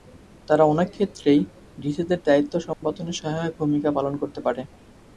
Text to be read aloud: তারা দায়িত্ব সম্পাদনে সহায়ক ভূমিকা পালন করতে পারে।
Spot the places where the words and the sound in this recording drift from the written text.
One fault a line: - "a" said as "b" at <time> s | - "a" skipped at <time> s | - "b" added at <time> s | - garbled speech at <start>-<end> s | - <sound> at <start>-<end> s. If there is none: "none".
- "অনেক ক্ষেত্রেই ডিসিদের" added at 0.7 s
- dropout at 2.7-2.8 s